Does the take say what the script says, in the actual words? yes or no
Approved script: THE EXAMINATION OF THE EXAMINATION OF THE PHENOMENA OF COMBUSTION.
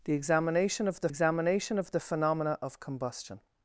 yes